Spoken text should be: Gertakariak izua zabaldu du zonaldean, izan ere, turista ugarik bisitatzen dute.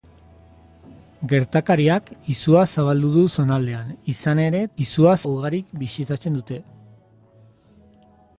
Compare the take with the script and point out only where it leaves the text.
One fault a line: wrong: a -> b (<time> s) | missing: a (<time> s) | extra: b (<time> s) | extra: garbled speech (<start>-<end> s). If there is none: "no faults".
wrong: turista -> izua (4.9 s)